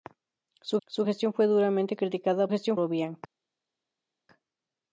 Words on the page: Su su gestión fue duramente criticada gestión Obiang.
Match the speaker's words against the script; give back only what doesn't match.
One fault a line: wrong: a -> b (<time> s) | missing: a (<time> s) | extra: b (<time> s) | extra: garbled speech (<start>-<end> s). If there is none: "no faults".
no faults